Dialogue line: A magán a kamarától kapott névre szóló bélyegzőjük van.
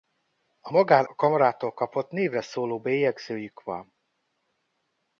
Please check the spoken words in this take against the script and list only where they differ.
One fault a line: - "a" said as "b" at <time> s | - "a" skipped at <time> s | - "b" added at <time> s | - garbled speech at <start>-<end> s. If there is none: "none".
none